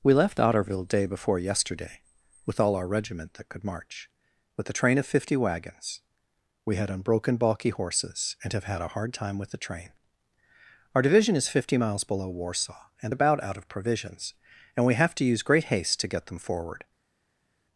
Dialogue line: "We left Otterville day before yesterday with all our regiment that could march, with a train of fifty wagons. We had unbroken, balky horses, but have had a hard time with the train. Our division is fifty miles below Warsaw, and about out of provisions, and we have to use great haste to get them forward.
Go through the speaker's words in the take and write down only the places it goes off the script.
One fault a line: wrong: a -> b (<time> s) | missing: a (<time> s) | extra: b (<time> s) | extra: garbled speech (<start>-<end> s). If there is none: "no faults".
wrong: but -> and (8.4 s)